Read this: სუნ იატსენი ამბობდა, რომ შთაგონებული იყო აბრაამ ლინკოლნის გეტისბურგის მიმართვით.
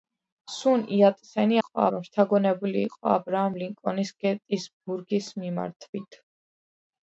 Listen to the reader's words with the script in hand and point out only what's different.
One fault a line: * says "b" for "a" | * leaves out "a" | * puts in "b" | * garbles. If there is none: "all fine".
* says "იყო" for "ამბობდა"